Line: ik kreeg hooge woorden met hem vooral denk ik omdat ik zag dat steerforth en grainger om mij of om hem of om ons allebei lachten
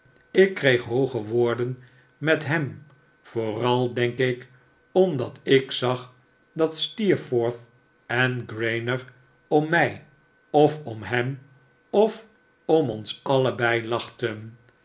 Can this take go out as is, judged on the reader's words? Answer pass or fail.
pass